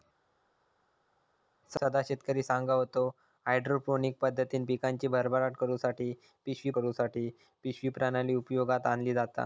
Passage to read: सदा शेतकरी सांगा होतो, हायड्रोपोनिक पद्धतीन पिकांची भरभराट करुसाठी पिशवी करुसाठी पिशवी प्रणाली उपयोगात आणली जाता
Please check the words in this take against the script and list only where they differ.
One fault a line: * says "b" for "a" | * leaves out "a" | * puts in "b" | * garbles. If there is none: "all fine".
all fine